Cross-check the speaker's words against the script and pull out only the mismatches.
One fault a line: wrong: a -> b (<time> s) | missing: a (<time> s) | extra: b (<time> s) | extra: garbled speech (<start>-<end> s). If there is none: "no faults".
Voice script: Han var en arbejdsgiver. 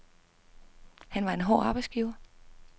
extra: hård (1.4 s)